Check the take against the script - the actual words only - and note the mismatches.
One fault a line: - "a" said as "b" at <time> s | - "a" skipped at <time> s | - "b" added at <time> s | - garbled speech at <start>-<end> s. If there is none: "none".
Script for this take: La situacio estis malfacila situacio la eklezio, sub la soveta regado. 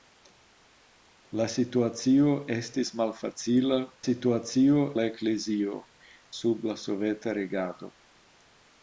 none